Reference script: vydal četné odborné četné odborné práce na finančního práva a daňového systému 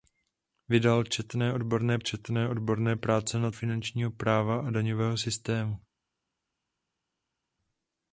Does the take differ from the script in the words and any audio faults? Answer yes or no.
no